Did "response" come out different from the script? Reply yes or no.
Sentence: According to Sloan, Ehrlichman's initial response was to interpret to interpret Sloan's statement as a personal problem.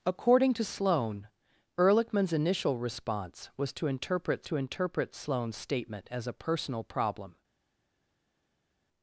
no